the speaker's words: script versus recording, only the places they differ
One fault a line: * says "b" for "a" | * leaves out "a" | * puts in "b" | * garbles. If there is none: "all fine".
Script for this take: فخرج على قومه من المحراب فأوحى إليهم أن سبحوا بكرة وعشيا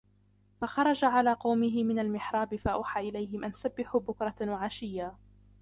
all fine